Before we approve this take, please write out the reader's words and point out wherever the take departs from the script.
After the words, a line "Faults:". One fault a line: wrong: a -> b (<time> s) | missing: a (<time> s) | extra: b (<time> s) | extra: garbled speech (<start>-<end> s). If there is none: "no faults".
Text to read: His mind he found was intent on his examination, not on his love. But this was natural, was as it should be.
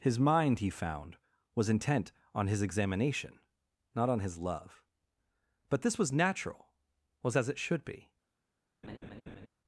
His mind he found was intent on his examination, not on his love. But this was natural, was as it should be.
Faults:
no faults